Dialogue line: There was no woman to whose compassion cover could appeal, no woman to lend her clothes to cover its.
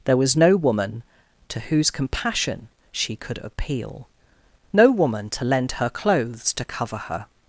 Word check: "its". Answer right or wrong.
wrong